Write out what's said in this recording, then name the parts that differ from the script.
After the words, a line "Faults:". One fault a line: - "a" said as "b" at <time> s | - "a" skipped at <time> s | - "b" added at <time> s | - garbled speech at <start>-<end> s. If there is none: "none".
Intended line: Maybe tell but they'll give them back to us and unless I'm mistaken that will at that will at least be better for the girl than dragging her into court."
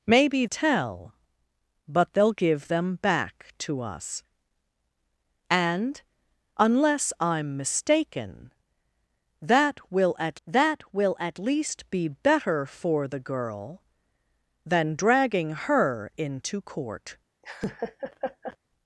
Maybe tell but they'll give them back to us and unless I'm mistaken that will at that will at least be better for the girl than dragging her into court."
Faults:
none